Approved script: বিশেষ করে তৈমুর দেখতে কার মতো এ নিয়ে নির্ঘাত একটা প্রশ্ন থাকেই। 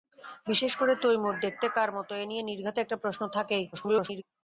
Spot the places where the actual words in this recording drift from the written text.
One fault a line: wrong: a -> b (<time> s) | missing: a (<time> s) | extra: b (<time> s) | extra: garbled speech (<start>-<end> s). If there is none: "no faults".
extra: garbled speech (3.7-4.2 s)